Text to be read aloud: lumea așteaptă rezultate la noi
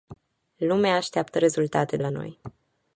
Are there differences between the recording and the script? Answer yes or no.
no